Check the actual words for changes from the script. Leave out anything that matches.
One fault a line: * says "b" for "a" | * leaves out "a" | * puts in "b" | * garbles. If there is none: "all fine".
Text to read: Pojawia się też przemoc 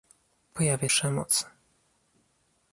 * leaves out "się też"